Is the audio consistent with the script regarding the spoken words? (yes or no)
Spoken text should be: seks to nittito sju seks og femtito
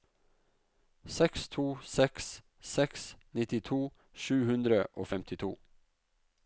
no